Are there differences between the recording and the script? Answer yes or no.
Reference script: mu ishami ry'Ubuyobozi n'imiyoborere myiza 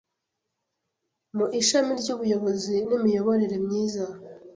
no